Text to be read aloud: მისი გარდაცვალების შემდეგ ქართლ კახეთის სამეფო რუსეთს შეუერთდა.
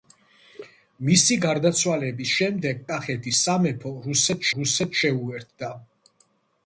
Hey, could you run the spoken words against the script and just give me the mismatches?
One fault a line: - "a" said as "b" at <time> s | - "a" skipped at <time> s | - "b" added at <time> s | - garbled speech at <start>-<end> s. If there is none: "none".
- "ქართლ" skipped at 2.8 s
- "რუსეთს" added at 4.6 s